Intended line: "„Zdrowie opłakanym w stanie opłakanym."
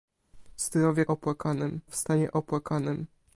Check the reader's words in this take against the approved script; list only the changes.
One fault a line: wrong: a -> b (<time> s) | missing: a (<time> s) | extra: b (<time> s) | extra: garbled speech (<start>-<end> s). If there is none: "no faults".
no faults